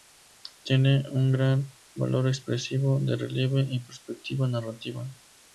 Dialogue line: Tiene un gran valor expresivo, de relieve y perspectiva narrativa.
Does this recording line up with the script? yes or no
yes